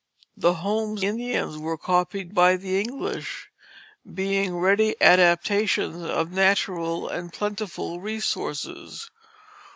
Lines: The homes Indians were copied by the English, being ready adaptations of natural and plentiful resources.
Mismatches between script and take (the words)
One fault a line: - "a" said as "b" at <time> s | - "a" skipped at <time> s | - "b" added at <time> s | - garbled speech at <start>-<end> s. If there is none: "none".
none